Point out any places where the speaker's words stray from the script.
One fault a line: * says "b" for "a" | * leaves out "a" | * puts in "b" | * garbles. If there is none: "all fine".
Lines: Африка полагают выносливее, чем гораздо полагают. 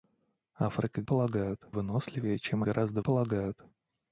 all fine